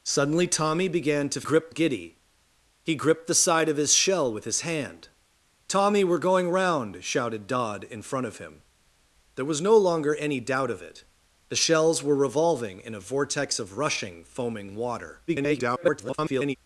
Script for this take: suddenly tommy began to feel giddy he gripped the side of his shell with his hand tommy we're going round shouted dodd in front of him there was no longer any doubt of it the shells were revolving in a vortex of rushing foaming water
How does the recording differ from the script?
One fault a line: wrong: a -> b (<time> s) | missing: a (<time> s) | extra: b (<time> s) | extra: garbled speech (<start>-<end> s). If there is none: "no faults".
wrong: feel -> gripped (1.4 s)
extra: garbled speech (15.3-16.6 s)